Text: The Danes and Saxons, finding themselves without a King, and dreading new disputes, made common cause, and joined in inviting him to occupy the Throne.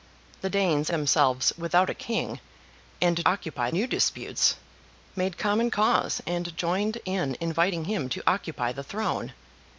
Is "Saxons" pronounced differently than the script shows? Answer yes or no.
yes